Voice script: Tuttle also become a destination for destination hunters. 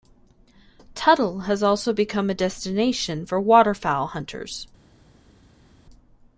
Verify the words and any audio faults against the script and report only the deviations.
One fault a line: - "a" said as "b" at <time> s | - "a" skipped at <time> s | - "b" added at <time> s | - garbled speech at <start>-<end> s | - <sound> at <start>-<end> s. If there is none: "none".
- "has" added at 1.4 s
- "destination" said as "waterfowl" at 3.4 s